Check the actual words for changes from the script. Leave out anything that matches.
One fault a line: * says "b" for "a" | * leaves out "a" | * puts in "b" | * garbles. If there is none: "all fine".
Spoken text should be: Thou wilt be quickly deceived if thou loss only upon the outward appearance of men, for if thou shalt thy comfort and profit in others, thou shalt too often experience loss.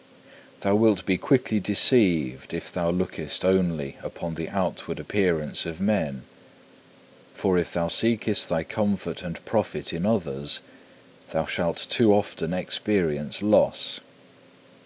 * says "lookest" for "loss"
* says "seekest" for "shalt"